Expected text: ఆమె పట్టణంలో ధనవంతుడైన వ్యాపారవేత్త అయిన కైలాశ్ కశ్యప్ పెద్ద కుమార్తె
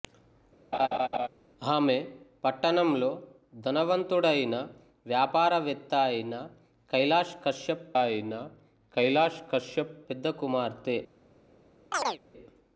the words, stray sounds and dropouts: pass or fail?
fail